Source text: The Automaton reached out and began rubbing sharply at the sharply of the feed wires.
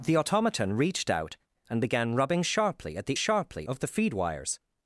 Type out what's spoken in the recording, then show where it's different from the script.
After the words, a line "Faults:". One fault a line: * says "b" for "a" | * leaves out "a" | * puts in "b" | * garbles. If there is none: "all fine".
The Automaton reached out and began rubbing sharply at the sharply of the feed wires.
Faults:
all fine